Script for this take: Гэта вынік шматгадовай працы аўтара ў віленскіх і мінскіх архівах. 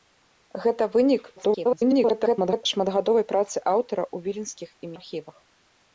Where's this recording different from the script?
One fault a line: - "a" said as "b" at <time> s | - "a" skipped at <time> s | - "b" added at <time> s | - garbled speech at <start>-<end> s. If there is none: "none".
- garbled speech at 1.4-2.6 s
- "мінскіх" skipped at 5.0 s